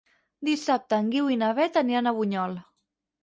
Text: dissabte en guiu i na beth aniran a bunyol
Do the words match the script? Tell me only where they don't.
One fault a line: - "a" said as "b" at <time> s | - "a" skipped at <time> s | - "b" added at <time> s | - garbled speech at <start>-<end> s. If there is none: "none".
none